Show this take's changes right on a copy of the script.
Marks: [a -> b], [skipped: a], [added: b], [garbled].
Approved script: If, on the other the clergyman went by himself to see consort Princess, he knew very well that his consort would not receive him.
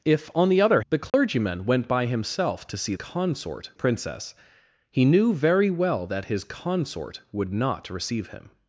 If, on the other the clergyman went by himself to see consort Princess, he knew very well that his consort would not receive him.